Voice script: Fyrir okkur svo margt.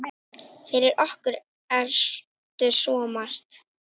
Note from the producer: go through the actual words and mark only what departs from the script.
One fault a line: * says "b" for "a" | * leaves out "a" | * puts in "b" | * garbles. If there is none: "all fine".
* puts in "ertu"